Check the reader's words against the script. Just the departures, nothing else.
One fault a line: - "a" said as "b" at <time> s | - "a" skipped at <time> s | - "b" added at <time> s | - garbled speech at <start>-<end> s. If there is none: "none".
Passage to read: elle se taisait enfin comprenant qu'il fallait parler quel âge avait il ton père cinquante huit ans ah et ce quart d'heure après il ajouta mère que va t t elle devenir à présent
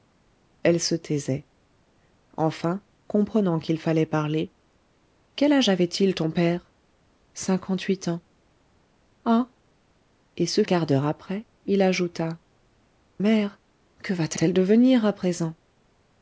none